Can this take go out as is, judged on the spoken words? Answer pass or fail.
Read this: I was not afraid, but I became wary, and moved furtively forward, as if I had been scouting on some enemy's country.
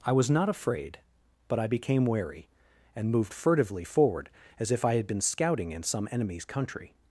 fail